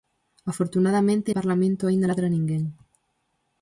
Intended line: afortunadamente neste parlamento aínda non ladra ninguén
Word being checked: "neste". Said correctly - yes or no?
no